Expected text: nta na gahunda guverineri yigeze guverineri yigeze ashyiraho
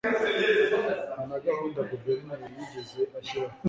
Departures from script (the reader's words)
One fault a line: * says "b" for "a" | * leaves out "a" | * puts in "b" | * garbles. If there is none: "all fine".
* leaves out "guverineri yigeze"